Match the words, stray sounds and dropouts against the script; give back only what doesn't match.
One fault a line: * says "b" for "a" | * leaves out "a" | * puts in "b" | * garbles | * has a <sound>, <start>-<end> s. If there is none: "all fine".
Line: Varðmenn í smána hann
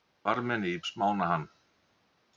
all fine